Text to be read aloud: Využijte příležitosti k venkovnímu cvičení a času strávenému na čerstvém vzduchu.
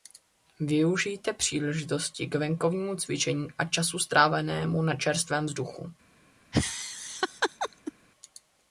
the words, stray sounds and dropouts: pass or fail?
fail